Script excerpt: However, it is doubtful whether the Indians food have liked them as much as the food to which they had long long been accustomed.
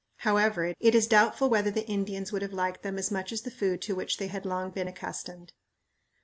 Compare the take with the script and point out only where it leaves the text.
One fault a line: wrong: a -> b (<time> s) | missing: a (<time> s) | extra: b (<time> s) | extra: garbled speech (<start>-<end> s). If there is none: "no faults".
wrong: food -> would (2.3 s)
missing: long (4.7 s)